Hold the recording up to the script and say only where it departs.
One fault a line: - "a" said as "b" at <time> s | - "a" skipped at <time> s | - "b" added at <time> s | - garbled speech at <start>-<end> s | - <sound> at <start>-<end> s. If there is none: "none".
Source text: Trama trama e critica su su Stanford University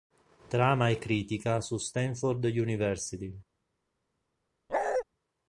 - "trama" skipped at 0.9 s
- "su" skipped at 1.8 s
- bark at 4.7-5.0 s